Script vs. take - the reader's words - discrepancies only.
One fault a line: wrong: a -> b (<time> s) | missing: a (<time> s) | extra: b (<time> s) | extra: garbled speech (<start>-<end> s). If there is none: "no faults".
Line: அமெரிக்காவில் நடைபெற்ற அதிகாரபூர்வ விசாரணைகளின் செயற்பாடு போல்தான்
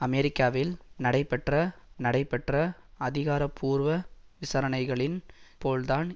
extra: நடைபெற்ற (2.0 s)
missing: செயற்பாடு (5.2 s)